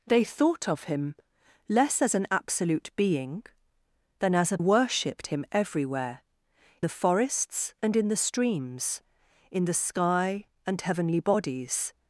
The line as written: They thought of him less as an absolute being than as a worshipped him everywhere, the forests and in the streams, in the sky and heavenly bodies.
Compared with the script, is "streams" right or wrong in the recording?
right